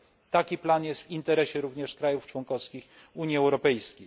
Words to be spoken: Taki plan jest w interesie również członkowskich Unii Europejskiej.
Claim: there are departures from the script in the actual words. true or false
true